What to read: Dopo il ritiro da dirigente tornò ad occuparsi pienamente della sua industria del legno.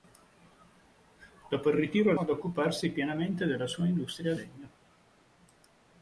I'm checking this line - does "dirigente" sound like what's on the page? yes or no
no